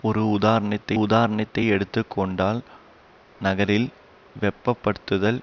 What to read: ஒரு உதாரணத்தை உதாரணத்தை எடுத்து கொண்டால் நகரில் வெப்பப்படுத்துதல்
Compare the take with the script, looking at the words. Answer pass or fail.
pass